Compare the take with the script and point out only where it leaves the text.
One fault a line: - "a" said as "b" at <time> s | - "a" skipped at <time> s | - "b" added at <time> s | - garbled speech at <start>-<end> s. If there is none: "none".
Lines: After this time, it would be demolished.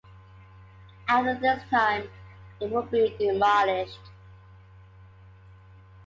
none